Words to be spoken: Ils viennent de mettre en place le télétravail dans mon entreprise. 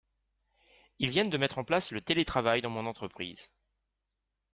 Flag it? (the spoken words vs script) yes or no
no